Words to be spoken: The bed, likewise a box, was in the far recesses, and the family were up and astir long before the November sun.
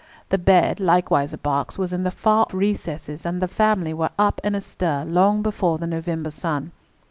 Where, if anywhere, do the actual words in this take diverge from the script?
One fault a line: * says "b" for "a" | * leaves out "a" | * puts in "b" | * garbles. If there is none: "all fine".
all fine